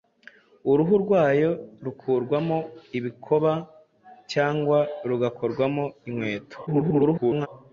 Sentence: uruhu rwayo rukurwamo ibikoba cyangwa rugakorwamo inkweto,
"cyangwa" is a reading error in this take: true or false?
false